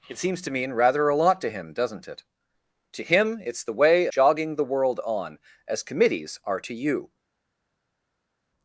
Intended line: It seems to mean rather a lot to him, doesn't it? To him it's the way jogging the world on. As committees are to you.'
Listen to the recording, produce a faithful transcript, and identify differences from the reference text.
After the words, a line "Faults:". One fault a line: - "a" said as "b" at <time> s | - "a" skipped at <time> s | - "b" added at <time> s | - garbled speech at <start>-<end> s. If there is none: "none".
It seems to mean rather a lot to him, doesn't it? To him it's the way jogging the world on. As committees are to you.'
Faults:
none